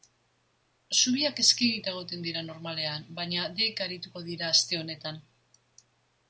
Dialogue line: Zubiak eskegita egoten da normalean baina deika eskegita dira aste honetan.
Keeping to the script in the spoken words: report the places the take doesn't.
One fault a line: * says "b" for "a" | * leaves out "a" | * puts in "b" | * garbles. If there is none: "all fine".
* says "dira" for "da"
* says "arituko" for "eskegita"